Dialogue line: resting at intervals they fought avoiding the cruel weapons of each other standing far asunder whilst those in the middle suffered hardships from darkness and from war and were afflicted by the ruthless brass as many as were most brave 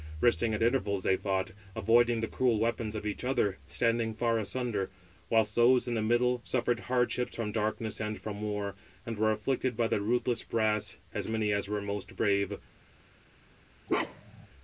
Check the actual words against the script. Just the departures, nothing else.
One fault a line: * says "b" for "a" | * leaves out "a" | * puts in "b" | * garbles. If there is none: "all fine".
all fine